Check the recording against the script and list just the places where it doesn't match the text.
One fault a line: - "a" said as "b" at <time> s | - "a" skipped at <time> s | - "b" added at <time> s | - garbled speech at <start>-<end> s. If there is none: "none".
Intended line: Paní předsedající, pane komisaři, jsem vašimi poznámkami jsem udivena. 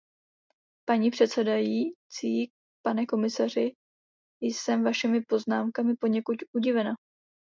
- "jsem" said as "poněkud" at 6.0 s